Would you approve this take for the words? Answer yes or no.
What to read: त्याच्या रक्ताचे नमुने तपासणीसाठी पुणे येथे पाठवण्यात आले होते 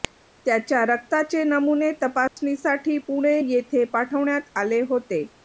yes